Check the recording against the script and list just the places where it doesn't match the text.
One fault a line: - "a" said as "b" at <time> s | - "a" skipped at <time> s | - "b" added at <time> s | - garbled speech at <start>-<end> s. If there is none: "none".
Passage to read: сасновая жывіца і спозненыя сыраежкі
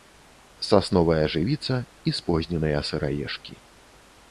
none